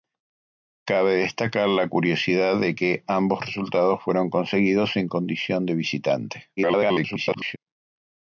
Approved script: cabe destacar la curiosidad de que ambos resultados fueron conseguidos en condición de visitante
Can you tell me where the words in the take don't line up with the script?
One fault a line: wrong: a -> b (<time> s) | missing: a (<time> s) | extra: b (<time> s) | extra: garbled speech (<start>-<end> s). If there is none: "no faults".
extra: garbled speech (6.6-7.6 s)